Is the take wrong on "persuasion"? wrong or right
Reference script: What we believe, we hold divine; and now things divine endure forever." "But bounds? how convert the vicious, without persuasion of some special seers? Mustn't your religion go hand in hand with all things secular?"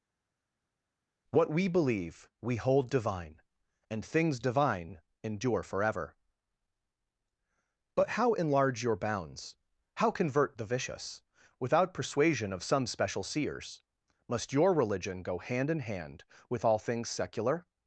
right